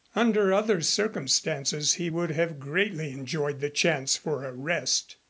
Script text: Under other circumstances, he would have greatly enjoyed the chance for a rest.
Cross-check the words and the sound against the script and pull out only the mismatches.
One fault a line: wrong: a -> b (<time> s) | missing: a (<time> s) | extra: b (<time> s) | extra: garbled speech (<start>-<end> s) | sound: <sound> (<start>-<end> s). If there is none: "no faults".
no faults